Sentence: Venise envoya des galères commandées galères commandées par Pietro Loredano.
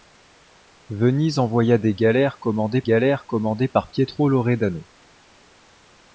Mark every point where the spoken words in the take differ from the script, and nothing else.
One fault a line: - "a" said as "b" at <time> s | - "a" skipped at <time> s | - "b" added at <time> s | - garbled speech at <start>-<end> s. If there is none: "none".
none